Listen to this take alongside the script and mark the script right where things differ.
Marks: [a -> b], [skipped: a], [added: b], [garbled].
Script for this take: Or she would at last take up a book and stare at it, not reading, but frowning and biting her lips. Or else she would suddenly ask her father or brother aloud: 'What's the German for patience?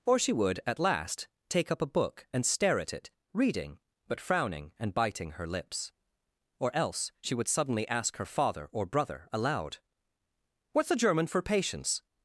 Or she would at last take up a book and stare at it, [skipped: not] reading, but frowning and biting her lips. Or else she would suddenly ask her father or brother aloud: 'What's the German for patience?